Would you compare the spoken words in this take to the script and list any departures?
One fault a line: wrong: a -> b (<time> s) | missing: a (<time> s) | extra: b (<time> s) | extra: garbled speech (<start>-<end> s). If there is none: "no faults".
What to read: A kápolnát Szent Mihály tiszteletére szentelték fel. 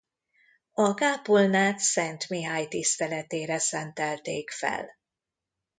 no faults